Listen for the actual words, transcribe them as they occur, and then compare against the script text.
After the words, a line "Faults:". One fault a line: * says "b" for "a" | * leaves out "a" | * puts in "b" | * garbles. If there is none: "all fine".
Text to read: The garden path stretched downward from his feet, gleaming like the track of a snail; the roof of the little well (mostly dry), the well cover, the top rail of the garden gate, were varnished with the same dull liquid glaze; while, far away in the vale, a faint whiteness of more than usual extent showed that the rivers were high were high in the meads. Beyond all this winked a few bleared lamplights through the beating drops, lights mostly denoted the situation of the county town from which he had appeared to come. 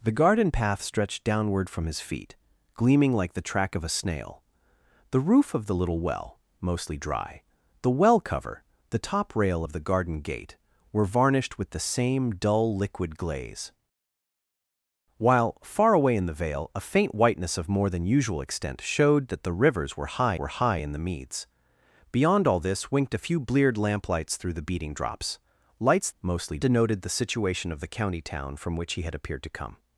The garden path stretched downward from his feet, gleaming like the track of a snail; the roof of the little well (mostly dry), the well cover, the top rail of the garden gate, were varnished with the same dull liquid glaze; while, far away in the vale, a faint whiteness of more than usual extent showed that the rivers were high were high in the meads. Beyond all this winked a few bleared lamplights through the beating drops, lights mostly denoted the situation of the county town from which he had appeared to come.
Faults:
all fine